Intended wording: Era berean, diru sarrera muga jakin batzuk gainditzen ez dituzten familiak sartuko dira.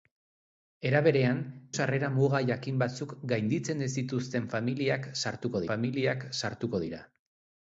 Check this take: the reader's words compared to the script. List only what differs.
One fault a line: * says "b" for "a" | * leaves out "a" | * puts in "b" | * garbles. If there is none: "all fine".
* leaves out "diru"
* puts in "familiak sartuko"